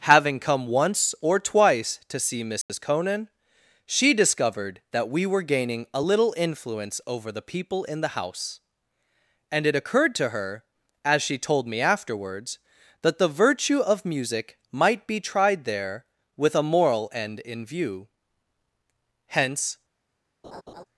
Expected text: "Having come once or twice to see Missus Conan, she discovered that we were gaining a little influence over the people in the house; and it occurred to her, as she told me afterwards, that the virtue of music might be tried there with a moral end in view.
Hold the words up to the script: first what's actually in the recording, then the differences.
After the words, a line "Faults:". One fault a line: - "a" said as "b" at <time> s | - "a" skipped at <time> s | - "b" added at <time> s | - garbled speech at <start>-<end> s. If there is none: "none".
"Having come once or twice to see Missus Conan, she discovered that we were gaining a little influence over the people in the house; and it occurred to her, as she told me afterwards, that the virtue of music might be tried there with a moral end in view. Hence
Faults:
- "Hence" added at 19.3 s